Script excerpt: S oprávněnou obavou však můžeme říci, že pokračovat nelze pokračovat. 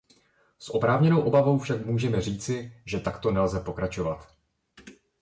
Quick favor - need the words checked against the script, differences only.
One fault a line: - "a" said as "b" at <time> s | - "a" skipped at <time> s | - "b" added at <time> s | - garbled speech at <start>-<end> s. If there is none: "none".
- "pokračovat" said as "takto" at 3.0 s